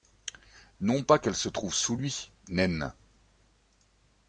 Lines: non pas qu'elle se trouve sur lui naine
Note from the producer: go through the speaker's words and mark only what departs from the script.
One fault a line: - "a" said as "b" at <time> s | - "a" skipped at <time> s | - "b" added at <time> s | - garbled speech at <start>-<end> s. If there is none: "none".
- "sur" said as "sous" at 1.8 s